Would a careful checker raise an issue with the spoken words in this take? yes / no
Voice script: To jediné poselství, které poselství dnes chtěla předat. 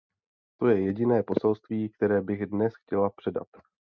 yes